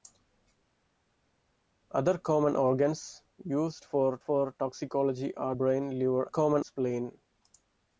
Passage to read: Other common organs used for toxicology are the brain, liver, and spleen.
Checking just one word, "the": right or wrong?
wrong